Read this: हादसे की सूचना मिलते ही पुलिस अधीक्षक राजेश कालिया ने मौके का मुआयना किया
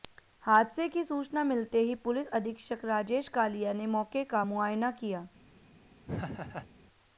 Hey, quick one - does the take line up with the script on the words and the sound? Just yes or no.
no